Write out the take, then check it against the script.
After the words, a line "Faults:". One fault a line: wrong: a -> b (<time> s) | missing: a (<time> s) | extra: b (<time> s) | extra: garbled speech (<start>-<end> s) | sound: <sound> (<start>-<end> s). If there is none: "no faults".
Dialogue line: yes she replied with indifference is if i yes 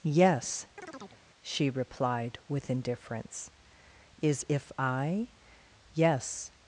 yes she replied with indifference is if i yes
Faults:
sound: chirp (0.8-1.2 s)